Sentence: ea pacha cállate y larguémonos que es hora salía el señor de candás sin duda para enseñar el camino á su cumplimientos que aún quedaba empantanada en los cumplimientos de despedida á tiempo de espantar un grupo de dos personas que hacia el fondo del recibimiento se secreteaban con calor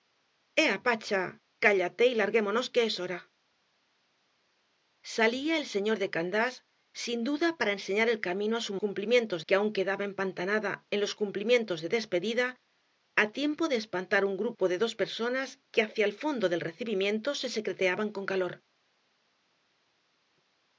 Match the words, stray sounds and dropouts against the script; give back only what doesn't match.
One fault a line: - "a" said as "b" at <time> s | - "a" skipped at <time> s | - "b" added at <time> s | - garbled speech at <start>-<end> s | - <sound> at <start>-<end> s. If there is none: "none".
none